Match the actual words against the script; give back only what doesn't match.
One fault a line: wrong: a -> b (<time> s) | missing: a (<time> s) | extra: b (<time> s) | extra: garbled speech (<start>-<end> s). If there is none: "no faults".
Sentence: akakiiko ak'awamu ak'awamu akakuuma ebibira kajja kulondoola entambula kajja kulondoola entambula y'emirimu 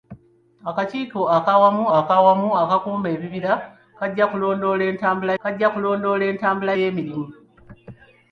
no faults